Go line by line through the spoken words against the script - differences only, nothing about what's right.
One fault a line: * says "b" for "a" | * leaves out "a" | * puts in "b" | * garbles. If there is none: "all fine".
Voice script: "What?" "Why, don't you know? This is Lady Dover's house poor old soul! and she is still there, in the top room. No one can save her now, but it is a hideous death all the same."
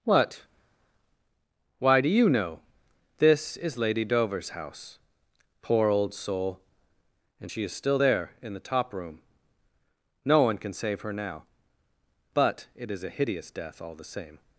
* says "do" for "don't"